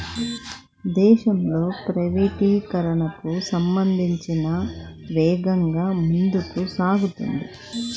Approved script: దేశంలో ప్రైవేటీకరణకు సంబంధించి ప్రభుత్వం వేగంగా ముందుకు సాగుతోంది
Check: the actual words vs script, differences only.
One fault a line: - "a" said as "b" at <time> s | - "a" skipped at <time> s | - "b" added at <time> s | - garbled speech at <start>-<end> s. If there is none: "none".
- "ప్రభుత్వం" skipped at 4.3 s